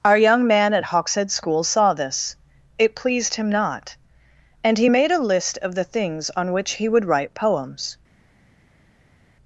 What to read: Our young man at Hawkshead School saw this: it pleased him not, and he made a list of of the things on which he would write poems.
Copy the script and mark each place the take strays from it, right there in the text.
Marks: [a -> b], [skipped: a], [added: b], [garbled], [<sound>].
Our young man at Hawkshead School saw this: it pleased him not, and he made a list of [skipped: of] the things on which he would write poems.